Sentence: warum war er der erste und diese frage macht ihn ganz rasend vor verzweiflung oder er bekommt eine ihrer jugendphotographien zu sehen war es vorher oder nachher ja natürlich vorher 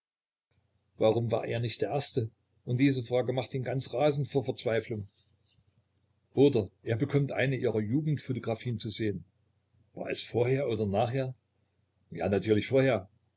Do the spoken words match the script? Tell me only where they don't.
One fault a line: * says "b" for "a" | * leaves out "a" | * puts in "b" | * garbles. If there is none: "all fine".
* puts in "nicht"